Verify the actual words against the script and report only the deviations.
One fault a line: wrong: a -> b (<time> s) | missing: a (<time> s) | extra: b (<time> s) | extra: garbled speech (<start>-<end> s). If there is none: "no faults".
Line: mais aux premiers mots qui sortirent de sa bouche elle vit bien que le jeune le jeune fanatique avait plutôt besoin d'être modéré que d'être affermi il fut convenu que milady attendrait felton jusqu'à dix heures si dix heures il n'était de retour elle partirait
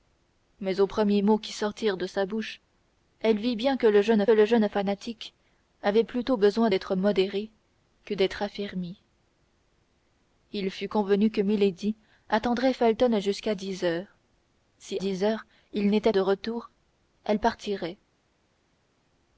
no faults